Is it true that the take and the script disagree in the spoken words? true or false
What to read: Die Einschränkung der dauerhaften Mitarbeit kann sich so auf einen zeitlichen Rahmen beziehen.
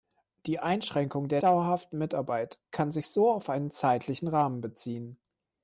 false